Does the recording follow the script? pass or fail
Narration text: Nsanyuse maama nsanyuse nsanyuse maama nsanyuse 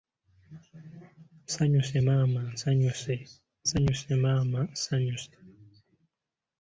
pass